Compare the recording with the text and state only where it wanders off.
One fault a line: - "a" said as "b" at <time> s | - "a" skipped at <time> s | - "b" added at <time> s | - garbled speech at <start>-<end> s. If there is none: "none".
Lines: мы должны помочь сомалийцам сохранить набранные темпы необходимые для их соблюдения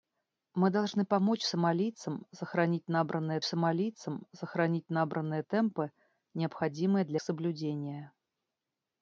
- "сомалийцам сохранить набранные" added at 3.4 s
- "их" skipped at 7.2 s